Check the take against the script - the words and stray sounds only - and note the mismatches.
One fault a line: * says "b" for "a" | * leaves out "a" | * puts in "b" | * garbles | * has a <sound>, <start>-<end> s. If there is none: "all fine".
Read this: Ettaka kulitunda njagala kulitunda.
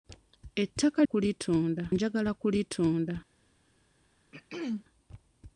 * has a throat clearing, 4.3-4.8 s